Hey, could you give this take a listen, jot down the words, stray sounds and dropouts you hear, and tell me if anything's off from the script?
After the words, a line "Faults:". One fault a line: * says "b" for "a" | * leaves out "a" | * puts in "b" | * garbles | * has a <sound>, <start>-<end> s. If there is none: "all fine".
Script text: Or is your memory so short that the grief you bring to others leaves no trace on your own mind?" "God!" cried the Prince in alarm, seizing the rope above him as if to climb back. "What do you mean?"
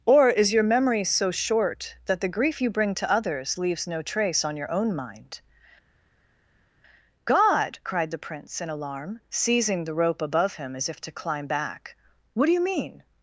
Or is your memory so short that the grief you bring to others leaves no trace on your own mind?" "God!" cried the Prince in alarm, seizing the rope above him as if to climb back. "What do you mean?"
Faults:
all fine